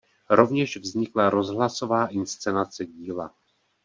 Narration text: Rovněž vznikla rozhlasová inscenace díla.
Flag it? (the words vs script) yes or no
no